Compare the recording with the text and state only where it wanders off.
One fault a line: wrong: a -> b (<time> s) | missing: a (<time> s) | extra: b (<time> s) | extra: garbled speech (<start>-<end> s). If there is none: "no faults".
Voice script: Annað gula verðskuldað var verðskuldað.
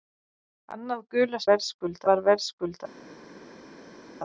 no faults